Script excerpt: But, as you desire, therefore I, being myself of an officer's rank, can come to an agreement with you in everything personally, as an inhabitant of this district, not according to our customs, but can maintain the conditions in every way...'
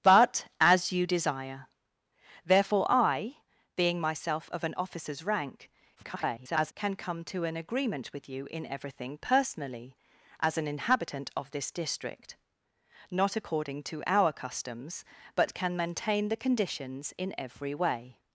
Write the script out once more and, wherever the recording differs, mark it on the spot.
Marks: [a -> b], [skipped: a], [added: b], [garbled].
But, as you desire, therefore I, being myself of an officer's rank, [garbled] can come to an agreement with you in everything personally, as an inhabitant of this district, not according to our customs, but can maintain the conditions in every way...'